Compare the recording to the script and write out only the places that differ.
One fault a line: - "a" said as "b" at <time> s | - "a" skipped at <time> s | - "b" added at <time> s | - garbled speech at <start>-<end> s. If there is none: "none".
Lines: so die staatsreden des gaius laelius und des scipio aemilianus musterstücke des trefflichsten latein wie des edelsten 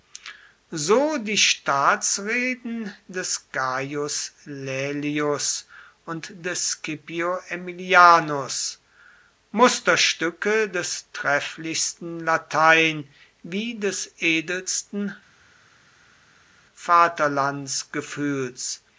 none